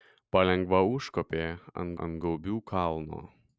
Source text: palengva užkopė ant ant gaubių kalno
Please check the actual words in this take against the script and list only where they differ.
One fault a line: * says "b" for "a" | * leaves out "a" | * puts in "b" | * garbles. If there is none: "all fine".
all fine